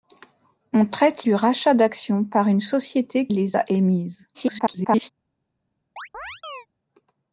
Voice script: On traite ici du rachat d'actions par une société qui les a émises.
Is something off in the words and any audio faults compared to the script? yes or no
yes